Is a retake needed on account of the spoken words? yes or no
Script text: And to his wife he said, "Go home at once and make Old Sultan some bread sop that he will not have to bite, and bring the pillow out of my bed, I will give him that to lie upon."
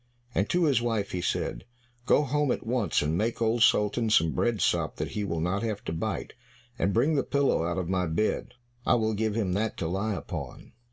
no